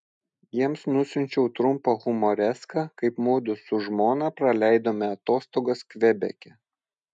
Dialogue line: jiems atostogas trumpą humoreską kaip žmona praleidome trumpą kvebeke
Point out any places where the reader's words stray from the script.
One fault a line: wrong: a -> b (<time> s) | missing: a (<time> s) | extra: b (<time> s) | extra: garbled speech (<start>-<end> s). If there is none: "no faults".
wrong: atostogas -> nusiunčiau (0.9 s)
extra: mudu su (3.3 s)
wrong: trumpą -> atostogas (5.2 s)